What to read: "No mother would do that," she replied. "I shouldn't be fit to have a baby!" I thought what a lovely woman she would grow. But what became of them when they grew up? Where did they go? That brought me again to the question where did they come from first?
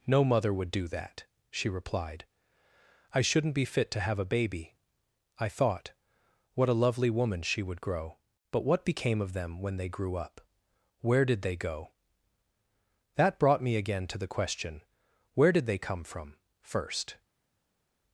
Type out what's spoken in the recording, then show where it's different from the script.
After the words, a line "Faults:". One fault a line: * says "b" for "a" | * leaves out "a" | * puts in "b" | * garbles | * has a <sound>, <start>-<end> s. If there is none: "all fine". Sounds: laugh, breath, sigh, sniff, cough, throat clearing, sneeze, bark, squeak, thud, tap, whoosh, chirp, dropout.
"No mother would do that," she replied. "I shouldn't be fit to have a baby!" I thought what a lovely woman she would grow. But what became of them when they grew up? Where did they go? That brought me again to the question where did they come from first?
Faults:
all fine